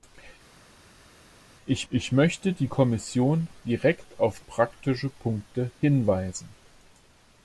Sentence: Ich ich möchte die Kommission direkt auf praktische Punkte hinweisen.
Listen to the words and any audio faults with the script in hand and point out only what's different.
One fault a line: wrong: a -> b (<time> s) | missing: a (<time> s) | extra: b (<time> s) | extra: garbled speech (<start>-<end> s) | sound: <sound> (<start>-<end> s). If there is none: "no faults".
no faults